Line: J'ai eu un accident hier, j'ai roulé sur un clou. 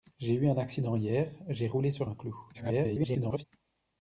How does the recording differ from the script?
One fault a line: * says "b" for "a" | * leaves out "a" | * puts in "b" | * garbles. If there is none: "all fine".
* garbles